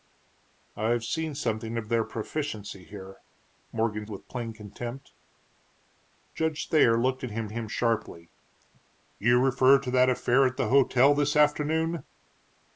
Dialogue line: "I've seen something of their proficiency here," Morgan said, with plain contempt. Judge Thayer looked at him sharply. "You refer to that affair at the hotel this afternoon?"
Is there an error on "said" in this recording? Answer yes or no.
yes